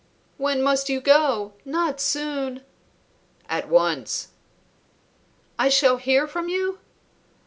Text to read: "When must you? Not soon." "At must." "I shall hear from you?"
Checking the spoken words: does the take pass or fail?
fail